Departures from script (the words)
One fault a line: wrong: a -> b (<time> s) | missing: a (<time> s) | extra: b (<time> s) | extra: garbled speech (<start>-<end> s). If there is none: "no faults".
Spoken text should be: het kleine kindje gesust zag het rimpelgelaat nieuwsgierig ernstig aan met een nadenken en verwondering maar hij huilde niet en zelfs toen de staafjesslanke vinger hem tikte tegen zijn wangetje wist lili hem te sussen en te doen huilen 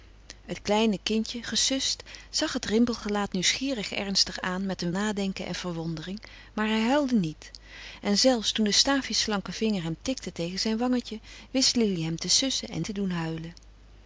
no faults